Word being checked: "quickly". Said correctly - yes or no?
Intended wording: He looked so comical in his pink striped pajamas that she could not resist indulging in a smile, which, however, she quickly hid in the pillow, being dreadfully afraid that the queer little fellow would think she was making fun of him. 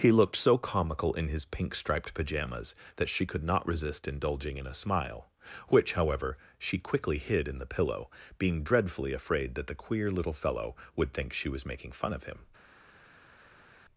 yes